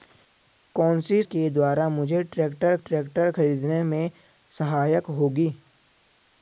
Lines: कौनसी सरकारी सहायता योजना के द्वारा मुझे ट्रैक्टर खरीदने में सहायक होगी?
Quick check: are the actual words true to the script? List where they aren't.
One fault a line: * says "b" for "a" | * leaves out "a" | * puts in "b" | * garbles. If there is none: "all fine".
* leaves out "सरकारी सहायता योजना"
* puts in "ट्रैक्टर"